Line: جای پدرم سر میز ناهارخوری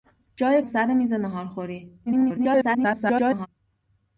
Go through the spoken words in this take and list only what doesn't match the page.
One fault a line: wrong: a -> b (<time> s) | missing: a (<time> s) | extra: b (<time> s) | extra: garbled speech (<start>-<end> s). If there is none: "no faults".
missing: پدرم (0.6 s)
extra: garbled speech (2.1-3.5 s)